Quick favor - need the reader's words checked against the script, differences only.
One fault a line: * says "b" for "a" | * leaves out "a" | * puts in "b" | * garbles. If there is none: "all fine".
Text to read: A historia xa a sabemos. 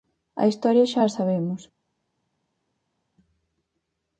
all fine